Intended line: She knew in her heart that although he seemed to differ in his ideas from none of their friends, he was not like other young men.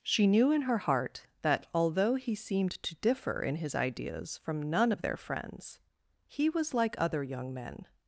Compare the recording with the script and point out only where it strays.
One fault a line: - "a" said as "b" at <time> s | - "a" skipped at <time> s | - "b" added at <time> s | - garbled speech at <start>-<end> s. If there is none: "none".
- "not" skipped at 6.7 s